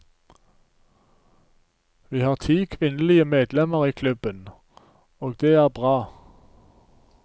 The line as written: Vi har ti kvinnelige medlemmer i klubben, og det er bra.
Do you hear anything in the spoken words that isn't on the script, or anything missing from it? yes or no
no